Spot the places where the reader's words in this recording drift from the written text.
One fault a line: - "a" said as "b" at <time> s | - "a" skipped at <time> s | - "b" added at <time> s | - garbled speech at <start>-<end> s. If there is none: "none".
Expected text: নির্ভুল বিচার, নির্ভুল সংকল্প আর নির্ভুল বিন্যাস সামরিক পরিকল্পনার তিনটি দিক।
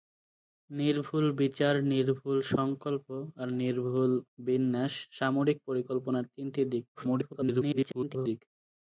- garbled speech at 6.9-8.4 s